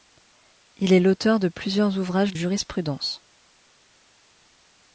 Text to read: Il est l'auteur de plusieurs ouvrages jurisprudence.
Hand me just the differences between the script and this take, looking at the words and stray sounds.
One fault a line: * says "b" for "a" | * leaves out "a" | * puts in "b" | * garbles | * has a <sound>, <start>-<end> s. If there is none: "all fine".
all fine